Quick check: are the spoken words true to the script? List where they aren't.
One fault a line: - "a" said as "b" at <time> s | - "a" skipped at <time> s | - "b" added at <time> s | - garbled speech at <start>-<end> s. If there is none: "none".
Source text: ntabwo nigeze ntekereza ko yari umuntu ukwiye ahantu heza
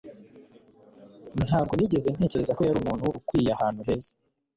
none